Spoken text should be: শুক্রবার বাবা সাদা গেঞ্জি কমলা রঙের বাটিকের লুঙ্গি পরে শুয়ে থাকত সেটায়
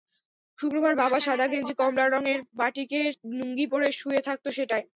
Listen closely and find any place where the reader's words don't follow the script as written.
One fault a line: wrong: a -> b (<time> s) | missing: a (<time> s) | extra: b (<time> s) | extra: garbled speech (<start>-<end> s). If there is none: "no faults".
no faults